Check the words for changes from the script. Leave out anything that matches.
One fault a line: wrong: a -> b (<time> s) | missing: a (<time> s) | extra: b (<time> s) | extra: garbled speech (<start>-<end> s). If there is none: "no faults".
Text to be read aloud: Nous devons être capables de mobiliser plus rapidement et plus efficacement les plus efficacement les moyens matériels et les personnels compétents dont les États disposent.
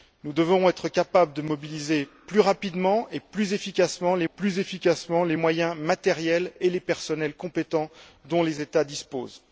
no faults